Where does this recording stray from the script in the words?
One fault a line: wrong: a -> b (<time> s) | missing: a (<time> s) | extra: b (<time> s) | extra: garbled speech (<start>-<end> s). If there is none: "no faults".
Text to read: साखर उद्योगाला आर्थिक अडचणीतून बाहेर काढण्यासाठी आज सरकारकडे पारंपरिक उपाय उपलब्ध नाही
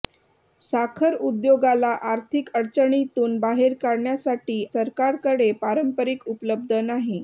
missing: आज (4.6 s)
missing: उपाय (6.3 s)